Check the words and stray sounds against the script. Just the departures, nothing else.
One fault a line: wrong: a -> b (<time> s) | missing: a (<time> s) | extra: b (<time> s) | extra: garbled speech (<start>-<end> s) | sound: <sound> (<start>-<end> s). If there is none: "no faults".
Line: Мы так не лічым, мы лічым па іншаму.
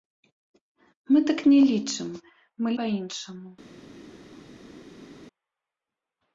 missing: лічым (2.7 s)